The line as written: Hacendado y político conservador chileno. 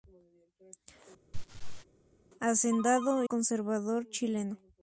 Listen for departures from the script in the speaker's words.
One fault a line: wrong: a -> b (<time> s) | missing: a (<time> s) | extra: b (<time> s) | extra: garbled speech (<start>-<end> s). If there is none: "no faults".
missing: y político (3.2 s)